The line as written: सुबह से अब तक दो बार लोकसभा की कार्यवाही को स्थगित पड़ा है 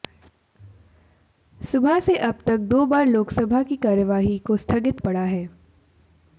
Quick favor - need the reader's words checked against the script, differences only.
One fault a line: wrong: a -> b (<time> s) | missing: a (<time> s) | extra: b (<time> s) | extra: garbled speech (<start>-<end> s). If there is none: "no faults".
no faults